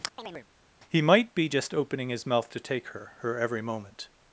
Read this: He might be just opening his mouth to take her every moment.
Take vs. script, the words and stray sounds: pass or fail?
fail